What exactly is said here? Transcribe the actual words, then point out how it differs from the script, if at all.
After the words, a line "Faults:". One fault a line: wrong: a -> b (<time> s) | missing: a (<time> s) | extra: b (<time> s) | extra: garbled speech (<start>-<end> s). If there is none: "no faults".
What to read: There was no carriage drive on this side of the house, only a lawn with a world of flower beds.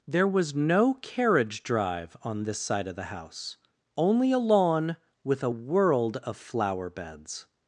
There was no carriage drive on this side of the house, only a lawn with a world of flower beds.
Faults:
no faults